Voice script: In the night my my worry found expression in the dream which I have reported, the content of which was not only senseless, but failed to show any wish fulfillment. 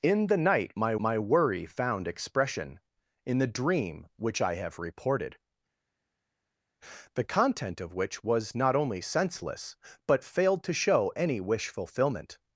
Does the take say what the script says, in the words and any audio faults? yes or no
yes